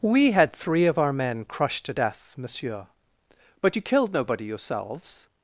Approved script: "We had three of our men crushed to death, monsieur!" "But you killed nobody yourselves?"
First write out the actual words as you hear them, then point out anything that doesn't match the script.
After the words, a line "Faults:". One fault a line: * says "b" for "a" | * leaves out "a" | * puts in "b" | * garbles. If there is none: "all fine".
"We had three of our men crushed to death, monsieur!" "But you killed nobody yourselves?"
Faults:
all fine